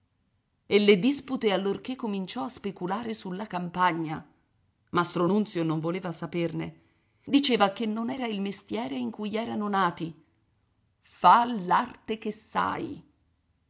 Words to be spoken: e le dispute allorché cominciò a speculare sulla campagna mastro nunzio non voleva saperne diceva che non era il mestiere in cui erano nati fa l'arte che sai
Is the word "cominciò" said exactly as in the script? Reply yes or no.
yes